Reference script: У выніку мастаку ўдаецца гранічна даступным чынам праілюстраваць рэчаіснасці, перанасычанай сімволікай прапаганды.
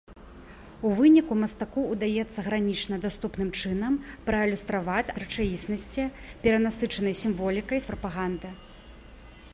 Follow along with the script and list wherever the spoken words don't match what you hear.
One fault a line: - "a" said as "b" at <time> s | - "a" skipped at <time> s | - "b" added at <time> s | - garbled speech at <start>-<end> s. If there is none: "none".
none